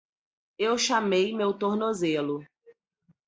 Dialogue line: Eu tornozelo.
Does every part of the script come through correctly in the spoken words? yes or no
no